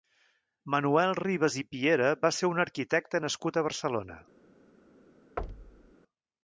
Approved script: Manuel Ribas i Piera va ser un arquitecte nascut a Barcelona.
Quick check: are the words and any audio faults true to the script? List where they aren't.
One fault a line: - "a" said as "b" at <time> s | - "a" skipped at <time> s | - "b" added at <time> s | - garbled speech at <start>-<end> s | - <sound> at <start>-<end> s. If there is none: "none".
- thud at 5.4-5.9 s